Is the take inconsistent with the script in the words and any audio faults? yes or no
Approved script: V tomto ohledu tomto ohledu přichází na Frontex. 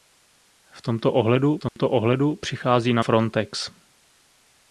yes